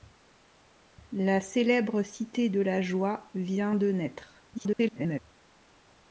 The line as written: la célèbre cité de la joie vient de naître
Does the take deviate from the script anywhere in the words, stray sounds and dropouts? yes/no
yes